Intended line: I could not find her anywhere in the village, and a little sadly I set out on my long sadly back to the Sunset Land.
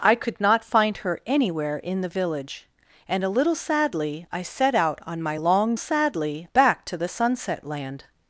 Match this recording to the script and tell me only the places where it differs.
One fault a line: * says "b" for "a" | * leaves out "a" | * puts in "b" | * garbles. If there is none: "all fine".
all fine